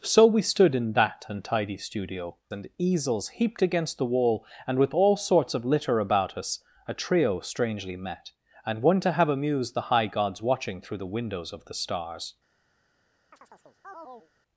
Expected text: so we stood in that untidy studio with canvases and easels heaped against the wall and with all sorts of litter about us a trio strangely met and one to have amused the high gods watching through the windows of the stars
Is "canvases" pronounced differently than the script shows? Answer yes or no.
yes